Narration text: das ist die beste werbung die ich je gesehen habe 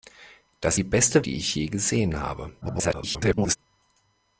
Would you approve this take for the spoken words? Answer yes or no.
no